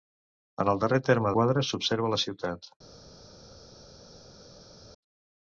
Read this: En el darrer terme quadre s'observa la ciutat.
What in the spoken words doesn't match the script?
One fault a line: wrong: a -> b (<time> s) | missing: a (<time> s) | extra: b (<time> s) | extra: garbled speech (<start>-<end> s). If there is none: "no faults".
no faults